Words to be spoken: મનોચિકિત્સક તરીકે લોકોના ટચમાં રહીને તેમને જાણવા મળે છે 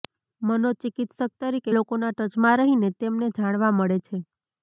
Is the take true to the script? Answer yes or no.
yes